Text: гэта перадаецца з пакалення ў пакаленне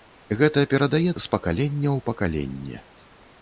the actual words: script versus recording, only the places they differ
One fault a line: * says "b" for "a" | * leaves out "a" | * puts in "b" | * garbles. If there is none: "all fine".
all fine